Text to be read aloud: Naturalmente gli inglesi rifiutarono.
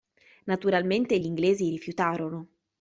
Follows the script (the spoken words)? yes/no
yes